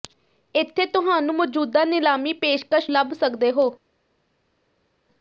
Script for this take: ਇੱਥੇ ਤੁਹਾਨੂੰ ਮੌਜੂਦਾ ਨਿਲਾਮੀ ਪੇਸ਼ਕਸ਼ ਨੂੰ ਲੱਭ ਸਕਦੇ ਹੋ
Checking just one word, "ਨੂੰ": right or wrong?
wrong